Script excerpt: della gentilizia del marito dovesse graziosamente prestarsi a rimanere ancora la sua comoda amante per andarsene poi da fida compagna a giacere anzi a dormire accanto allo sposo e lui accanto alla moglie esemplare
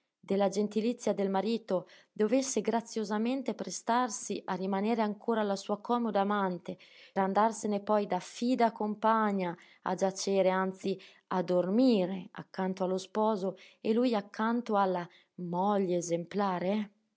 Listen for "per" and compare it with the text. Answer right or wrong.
wrong